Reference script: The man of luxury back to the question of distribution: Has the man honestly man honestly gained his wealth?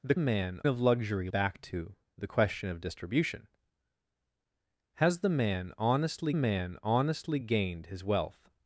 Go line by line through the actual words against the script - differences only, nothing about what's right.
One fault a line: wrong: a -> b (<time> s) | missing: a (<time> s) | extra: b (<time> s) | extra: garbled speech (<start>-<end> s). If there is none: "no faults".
no faults